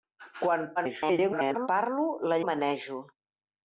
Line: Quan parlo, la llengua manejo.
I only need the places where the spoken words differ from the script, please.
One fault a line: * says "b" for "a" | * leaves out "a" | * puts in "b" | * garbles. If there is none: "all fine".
* garbles
* leaves out "llengua"